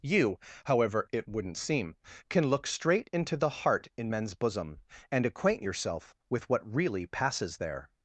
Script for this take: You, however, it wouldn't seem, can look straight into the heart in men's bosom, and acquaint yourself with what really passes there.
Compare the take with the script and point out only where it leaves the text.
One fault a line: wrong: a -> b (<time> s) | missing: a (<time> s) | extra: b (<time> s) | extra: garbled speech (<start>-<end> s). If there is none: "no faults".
no faults